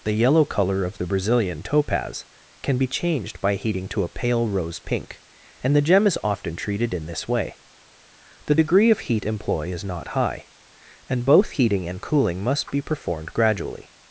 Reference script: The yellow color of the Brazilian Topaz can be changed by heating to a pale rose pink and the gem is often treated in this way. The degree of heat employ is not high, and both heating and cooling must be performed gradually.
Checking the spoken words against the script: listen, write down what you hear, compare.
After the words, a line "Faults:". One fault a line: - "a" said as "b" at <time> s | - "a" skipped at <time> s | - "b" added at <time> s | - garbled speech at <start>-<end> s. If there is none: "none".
The yellow color of the Brazilian Topaz can be changed by heating to a pale rose pink and the gem is often treated in this way. The degree of heat employ is not high, and both heating and cooling must be performed gradually.
Faults:
none